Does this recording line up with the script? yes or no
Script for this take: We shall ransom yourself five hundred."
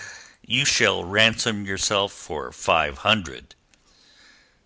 no